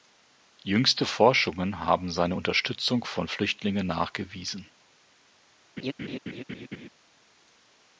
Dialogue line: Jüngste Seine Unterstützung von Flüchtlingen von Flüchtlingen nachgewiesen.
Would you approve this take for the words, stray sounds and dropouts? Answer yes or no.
no